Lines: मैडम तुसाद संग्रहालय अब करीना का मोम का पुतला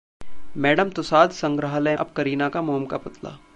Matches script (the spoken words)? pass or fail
pass